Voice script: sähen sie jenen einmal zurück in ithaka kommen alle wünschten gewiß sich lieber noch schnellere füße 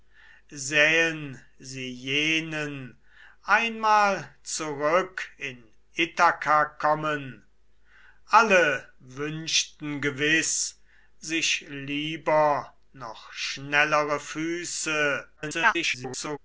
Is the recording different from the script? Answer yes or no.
yes